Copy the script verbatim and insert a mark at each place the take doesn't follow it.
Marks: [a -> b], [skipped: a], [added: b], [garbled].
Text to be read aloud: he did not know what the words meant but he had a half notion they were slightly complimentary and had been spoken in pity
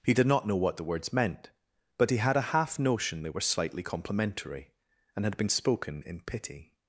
he did not know what the words meant but he had a half notion they were slightly complimentary and had been spoken in pity